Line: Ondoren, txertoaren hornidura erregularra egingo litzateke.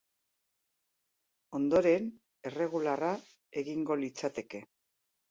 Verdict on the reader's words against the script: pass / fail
fail